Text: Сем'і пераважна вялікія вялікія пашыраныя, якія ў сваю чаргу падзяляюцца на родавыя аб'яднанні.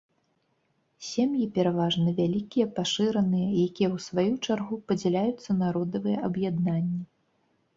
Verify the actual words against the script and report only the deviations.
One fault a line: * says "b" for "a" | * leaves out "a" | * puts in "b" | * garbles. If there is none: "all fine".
* leaves out "вялікія"